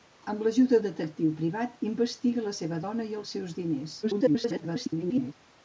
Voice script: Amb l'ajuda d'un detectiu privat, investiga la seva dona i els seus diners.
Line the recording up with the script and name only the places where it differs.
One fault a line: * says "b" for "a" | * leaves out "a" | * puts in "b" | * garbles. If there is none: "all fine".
* leaves out "d'un"
* garbles